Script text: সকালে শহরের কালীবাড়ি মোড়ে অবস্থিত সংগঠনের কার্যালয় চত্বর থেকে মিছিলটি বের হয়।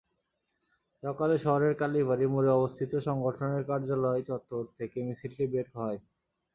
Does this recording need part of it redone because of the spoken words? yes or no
no